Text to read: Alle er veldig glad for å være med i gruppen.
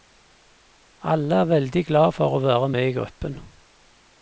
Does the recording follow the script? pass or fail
pass